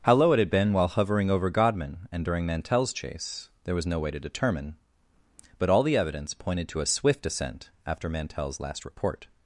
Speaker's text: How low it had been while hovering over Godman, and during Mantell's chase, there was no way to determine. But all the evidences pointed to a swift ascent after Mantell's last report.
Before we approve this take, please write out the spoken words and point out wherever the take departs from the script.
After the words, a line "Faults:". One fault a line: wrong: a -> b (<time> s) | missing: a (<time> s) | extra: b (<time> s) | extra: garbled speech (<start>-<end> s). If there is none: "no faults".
How low it had been while hovering over Godman, and during Mantell's chase, there was no way to determine. But all the evidence pointed to a swift ascent after Mantell's last report.
Faults:
wrong: evidences -> evidence (6.0 s)